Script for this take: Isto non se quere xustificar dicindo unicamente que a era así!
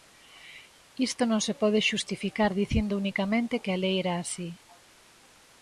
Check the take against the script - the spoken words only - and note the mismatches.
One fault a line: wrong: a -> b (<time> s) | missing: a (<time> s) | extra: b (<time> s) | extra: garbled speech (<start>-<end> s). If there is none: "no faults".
wrong: quere -> pode (1.6 s)
extra: lei (3.8 s)